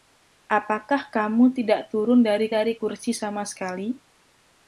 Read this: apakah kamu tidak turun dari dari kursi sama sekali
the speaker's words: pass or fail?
pass